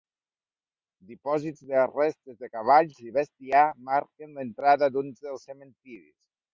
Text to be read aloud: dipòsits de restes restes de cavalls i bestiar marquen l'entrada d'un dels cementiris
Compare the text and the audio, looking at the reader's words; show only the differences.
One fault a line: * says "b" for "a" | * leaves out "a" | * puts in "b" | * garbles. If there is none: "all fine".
* leaves out "restes"